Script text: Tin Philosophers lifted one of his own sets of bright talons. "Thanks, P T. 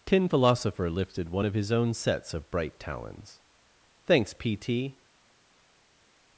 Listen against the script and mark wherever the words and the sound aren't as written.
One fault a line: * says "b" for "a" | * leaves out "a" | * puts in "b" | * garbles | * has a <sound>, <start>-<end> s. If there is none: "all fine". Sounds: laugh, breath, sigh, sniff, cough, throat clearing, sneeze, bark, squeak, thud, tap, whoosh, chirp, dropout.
* says "Philosopher" for "Philosophers"